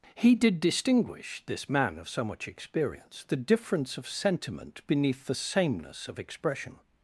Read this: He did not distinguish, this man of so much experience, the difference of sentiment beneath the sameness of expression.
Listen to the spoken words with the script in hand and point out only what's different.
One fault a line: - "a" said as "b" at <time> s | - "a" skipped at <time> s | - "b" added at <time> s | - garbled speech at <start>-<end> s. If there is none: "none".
- "not" skipped at 0.6 s